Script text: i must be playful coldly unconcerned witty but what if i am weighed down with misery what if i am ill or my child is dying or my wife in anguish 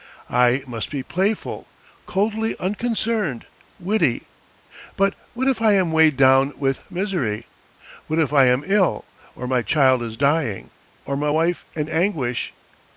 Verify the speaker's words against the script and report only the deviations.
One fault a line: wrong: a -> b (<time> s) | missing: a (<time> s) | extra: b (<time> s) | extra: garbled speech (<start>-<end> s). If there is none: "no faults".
no faults